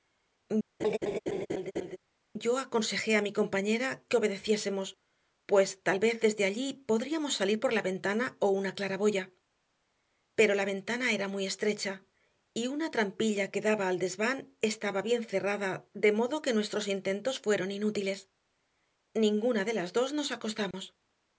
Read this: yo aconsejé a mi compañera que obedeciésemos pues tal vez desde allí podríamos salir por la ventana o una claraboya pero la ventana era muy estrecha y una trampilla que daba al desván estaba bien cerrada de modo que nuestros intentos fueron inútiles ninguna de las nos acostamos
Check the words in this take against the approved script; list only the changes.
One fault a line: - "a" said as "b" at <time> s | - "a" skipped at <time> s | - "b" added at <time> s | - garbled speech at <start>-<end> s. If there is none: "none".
- "dos" added at 20.0 s